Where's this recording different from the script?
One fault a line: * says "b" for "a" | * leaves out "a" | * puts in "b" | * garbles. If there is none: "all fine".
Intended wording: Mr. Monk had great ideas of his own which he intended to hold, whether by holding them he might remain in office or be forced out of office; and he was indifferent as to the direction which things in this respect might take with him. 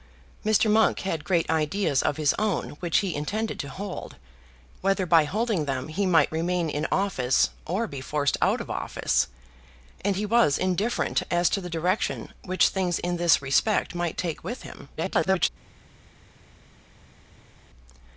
* garbles